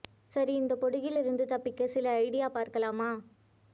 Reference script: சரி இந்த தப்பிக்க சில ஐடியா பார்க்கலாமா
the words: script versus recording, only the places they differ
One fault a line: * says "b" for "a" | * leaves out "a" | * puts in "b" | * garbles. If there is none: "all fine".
* puts in "பொடுகில் இருந்து"